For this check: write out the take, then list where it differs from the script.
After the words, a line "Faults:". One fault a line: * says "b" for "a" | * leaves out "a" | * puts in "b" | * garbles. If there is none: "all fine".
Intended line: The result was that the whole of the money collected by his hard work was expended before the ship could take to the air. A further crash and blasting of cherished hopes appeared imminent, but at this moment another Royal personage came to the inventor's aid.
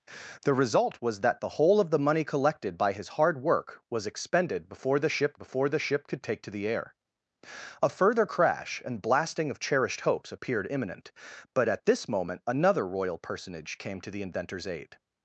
The result was that the whole of the money collected by his hard work was expended before the ship before the ship could take to the air. A further crash and blasting of cherished hopes appeared imminent, but at this moment another Royal personage came to the inventor's aid.
Faults:
* puts in "before the ship"